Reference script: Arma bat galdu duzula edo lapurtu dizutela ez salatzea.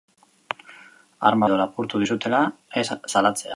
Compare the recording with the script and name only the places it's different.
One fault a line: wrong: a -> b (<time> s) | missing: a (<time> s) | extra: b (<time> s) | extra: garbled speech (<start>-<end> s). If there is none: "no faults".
missing: bat galdu duzula (1.5 s)